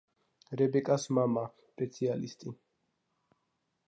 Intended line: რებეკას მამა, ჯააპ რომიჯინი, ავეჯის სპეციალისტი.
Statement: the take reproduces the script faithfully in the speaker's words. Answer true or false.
false